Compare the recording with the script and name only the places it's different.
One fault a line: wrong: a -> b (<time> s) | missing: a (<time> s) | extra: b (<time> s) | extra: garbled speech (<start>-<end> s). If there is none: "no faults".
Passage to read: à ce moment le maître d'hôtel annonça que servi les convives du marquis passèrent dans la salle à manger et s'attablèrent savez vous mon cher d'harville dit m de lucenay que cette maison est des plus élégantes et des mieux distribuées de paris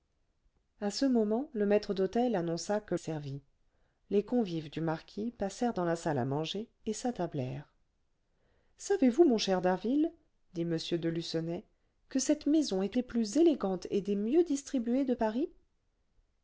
no faults